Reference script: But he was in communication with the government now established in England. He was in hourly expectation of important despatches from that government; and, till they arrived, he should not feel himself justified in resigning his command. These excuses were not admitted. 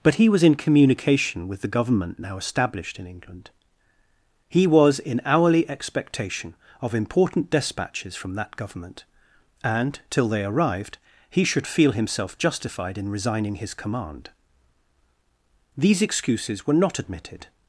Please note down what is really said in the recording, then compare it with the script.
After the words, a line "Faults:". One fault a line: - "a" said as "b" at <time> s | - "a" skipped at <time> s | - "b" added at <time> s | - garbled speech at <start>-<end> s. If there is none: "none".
But he was in communication with the government now established in England. He was in hourly expectation of important despatches from that government; and, till they arrived, he should feel himself justified in resigning his command. These excuses were not admitted.
Faults:
- "not" skipped at 11.7 s